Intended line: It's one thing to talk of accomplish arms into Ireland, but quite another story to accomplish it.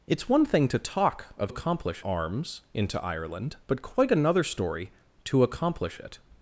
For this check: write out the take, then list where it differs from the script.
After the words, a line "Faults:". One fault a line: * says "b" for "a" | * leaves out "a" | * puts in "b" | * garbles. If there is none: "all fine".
It's one thing to talk of accomplish arms into Ireland, but quite another story to accomplish it.
Faults:
all fine